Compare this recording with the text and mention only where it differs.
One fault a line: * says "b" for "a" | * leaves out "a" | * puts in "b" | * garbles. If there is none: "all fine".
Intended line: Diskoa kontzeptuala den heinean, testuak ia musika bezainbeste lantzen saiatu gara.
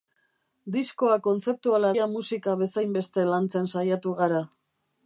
* leaves out "den heinean testuak"